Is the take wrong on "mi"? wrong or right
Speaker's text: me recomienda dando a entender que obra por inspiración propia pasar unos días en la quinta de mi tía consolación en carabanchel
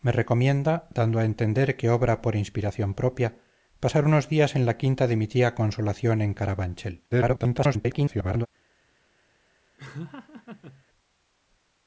right